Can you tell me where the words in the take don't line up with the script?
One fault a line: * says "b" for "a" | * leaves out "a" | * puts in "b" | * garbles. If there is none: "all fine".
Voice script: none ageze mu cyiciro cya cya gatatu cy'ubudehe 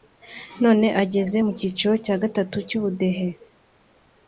* leaves out "cya"